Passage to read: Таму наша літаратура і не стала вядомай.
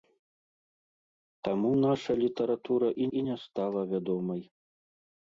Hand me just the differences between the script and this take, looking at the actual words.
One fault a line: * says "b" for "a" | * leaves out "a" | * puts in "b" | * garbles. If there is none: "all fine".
* puts in "і"